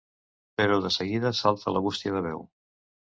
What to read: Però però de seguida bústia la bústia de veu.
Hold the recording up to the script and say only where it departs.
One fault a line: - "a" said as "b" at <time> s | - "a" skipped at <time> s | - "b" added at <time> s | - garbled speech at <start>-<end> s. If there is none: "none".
- "però" skipped at 0.8 s
- "bústia" said as "salta" at 1.4 s